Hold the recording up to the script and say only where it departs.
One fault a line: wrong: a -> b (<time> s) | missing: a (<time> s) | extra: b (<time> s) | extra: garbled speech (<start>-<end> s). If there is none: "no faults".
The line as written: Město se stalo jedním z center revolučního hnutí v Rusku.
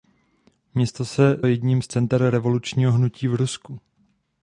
missing: stalo (1.4 s)